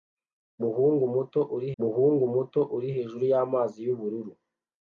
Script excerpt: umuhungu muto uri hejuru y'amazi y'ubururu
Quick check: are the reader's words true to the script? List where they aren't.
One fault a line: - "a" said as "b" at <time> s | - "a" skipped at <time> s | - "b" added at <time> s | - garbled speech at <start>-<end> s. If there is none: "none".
- "umuhungu muto uri" added at 1.8 s